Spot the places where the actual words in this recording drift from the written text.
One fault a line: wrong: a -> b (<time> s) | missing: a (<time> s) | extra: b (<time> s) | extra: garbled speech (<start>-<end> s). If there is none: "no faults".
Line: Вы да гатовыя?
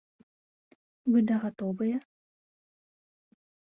no faults